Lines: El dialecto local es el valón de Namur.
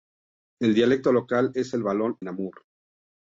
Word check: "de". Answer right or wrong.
wrong